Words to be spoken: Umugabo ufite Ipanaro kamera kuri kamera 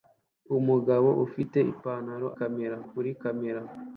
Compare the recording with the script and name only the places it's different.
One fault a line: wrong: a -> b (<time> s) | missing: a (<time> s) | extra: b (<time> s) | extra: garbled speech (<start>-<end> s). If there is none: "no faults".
no faults